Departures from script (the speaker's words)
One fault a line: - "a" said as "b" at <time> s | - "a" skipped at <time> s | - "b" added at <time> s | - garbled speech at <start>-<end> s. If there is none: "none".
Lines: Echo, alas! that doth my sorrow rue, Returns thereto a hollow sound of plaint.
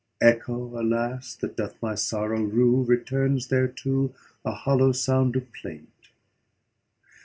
none